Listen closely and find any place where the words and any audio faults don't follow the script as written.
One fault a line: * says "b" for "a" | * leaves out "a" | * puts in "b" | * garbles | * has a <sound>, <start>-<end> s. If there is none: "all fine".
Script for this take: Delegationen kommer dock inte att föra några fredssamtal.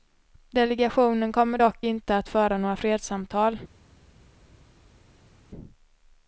all fine